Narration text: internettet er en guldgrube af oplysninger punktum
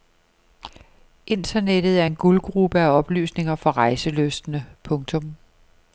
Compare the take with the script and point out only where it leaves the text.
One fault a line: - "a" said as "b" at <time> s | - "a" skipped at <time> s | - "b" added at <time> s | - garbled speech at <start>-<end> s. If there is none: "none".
- "for rejselystne" added at 3.6 s